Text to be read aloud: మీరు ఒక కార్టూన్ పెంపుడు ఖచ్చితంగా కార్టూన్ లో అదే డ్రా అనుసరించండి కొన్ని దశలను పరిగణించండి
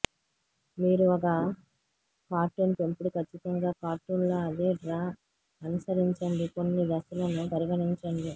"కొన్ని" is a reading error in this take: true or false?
false